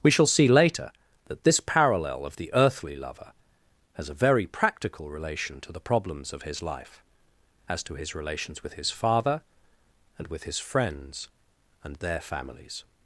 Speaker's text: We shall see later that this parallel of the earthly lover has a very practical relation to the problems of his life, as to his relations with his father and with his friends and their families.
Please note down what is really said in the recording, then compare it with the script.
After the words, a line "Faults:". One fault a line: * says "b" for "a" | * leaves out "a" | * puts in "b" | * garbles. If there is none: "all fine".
We shall see later that this parallel of the earthly lover has a very practical relation to the problems of his life, as to his relations with his father and with his friends and their families.
Faults:
all fine